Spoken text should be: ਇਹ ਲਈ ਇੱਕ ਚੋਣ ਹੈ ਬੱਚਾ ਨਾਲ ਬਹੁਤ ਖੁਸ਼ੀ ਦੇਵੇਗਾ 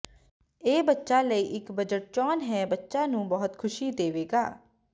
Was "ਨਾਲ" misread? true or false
true